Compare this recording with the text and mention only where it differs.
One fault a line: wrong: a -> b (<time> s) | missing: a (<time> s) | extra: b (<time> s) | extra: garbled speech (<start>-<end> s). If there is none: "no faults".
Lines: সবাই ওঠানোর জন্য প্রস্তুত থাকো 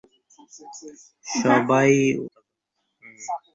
missing: ওঠানোর জন্য প্রস্তুত (1.9 s)